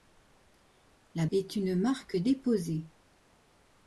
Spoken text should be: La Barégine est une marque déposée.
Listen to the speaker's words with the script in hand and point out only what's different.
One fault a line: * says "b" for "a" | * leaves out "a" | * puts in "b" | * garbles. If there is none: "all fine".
* leaves out "Barégine"